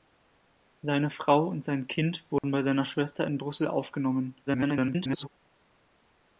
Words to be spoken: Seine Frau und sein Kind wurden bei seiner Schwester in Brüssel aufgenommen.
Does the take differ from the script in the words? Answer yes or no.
yes